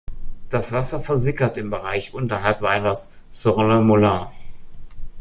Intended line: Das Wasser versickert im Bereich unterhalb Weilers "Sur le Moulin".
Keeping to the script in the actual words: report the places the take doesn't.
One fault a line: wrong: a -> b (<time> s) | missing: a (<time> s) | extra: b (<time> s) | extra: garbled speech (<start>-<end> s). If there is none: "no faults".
no faults